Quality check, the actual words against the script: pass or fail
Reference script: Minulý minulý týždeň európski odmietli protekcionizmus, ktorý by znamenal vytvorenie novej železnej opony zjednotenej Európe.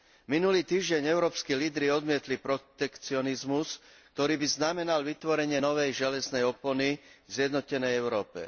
fail